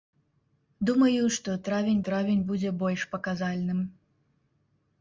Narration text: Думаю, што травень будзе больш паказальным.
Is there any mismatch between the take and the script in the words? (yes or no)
yes